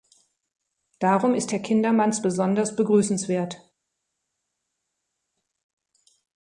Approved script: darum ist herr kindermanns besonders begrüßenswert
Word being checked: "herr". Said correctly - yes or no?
yes